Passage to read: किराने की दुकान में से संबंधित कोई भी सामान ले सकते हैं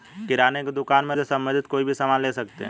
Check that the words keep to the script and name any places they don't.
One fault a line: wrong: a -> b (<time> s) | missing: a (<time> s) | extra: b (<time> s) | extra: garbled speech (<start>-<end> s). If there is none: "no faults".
no faults